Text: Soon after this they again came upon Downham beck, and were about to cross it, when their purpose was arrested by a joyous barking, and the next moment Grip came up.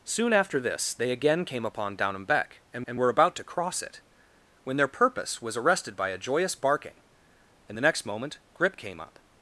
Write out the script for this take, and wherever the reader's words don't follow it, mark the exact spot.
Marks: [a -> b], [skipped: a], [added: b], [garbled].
Soon after this they again came upon Downham beck, and [added: and] were about to cross it, when their purpose was arrested by a joyous barking, and the next moment Grip came up.